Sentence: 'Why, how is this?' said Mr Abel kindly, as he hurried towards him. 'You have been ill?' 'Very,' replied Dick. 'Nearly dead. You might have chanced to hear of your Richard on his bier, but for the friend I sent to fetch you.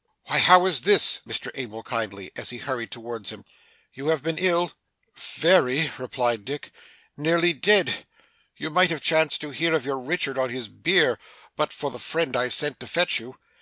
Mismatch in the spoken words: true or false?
true